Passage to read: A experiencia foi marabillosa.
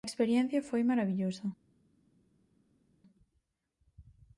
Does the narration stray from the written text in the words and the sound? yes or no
no